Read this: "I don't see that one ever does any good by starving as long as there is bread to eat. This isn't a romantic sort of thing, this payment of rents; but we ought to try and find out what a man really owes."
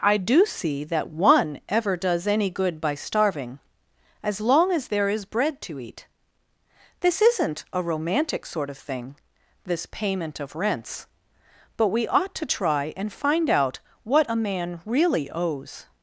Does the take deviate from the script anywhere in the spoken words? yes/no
yes